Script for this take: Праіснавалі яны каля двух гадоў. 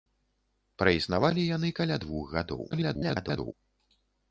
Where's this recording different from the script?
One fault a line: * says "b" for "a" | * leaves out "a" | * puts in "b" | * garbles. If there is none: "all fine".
* garbles